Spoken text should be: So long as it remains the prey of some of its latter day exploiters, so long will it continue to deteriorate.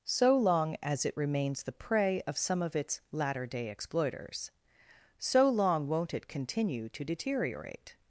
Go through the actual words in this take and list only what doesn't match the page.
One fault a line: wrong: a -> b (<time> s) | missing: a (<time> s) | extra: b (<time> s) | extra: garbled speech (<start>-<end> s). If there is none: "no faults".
wrong: will -> won't (5.9 s)